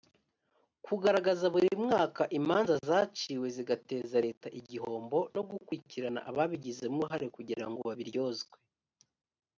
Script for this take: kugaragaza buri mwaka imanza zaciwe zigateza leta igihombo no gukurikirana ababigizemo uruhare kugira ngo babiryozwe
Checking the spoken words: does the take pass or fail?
pass